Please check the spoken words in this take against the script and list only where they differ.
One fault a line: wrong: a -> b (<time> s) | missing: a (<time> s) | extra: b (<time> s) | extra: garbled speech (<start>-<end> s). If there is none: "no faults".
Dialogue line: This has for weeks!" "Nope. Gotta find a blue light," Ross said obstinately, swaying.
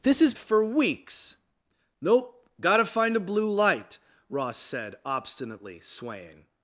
no faults